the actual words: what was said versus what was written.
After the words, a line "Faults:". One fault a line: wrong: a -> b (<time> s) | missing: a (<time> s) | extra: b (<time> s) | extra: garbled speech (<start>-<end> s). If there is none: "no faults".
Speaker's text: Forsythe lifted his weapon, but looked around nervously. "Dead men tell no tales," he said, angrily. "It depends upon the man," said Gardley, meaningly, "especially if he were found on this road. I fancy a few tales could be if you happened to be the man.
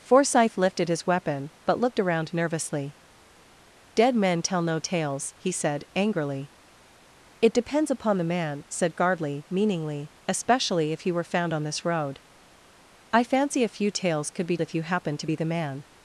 Forsythe lifted his weapon, but looked around nervously. "Dead men tell no tales," he said, angrily. "It depends upon the man," said Gardley, meaningly, "especially if he were found on this road. I fancy a few tales could be if you happened to be the man.
Faults:
no faults